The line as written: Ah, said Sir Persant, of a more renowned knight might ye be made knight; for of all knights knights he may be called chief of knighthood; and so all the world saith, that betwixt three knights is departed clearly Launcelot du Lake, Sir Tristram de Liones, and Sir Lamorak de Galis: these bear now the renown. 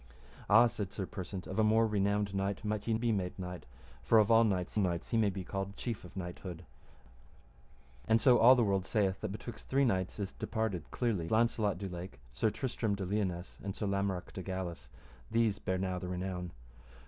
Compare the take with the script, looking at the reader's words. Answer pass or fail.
pass